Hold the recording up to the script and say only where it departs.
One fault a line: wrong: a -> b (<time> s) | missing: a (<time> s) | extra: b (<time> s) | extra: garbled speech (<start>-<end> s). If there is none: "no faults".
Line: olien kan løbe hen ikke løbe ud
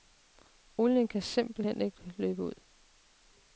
wrong: løbe -> simpelt (1.2 s)